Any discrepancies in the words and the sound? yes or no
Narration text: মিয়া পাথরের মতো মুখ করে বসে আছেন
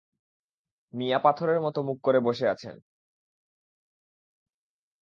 no